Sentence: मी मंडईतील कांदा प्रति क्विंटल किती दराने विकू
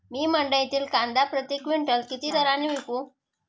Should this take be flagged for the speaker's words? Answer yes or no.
no